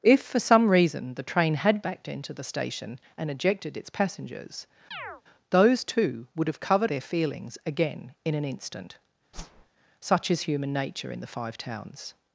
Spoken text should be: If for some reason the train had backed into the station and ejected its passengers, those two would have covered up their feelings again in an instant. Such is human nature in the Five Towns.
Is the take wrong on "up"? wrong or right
wrong